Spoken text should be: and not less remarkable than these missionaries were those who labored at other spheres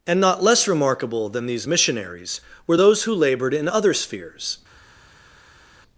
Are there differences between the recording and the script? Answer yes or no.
yes